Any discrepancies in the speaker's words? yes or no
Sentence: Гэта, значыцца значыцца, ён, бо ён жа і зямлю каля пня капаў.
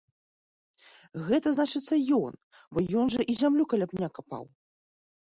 yes